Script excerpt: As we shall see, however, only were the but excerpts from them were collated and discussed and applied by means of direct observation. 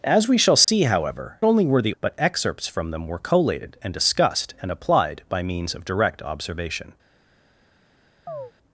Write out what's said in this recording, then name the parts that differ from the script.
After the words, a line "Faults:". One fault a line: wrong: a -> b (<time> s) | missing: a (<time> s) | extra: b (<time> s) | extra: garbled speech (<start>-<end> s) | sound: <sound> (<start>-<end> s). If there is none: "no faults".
As we shall see, however, only were the but excerpts from them were collated and discussed and applied by means of direct observation.
Faults:
sound: dropout (0.6-0.7 s)
sound: chirp (8.3-8.5 s)